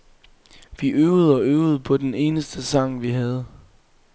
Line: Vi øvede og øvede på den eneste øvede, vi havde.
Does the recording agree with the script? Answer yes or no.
no